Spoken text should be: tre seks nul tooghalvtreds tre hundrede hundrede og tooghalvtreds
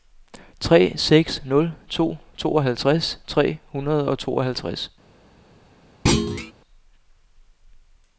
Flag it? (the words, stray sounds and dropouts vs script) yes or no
yes